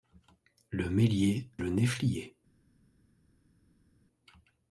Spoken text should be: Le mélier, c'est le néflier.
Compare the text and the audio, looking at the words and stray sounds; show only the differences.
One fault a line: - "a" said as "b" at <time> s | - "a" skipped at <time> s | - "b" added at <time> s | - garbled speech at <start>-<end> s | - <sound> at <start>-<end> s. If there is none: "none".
- "c'est" skipped at 1.5 s